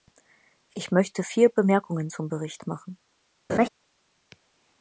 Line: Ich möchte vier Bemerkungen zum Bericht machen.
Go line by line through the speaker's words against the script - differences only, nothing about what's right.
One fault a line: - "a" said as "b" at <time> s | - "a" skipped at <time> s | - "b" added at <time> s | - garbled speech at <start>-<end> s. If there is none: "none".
none